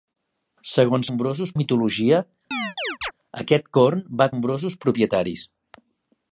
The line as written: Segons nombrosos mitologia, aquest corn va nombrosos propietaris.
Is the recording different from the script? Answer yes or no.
no